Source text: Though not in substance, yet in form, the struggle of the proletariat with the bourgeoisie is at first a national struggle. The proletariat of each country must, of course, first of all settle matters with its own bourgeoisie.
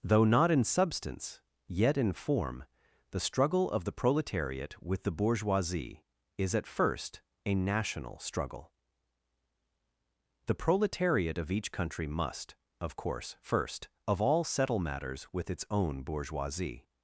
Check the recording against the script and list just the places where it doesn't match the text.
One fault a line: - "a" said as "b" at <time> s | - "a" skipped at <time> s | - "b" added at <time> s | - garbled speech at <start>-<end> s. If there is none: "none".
none